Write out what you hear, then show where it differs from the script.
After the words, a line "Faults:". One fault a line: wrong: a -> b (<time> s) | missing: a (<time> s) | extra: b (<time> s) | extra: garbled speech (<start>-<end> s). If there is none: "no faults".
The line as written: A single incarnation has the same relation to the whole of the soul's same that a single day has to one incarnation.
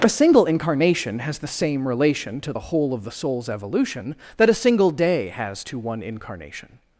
A single incarnation has the same relation to the whole of the soul's evolution that a single day has to one incarnation.
Faults:
wrong: same -> evolution (3.5 s)